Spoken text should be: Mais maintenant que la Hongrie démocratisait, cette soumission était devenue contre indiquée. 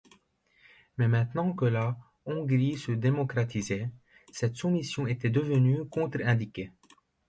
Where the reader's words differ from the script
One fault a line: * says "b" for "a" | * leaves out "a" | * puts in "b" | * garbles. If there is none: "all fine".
* puts in "se"